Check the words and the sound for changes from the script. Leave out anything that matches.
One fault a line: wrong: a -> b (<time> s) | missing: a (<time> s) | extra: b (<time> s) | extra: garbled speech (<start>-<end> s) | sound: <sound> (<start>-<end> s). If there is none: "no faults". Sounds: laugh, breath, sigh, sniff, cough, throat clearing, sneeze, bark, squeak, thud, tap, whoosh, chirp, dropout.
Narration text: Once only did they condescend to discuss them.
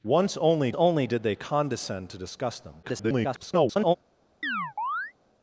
extra: only (0.7 s)
extra: garbled speech (2.8-4.0 s)
sound: chirp (4.4-5.1 s)